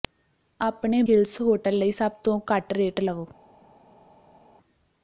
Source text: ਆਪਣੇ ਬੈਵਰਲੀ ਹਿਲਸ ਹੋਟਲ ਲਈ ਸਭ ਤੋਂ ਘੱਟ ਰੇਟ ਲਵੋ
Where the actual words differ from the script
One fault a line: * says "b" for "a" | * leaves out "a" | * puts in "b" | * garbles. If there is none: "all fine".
* leaves out "ਬੈਵਰਲੀ"